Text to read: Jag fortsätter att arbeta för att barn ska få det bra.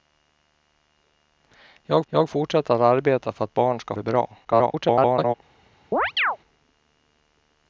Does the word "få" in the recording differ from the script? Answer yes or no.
yes